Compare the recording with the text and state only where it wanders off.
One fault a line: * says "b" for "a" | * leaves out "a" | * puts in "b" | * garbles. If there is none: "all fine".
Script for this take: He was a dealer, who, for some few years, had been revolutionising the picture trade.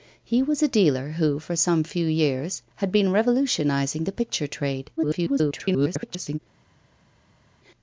* garbles